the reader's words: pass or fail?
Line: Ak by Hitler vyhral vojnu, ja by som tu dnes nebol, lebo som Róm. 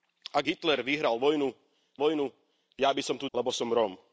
fail